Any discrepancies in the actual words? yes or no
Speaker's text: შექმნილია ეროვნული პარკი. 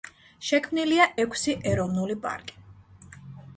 yes